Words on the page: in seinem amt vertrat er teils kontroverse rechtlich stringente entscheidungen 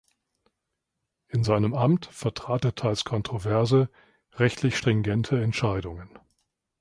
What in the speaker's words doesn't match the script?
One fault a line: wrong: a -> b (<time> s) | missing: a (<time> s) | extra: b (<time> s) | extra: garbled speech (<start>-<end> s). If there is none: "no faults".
no faults